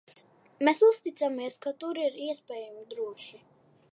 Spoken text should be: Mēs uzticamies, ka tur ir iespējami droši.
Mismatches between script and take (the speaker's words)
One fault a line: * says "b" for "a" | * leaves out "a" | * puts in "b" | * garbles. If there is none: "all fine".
all fine